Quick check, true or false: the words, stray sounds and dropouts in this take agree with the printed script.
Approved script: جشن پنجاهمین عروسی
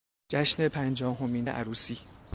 true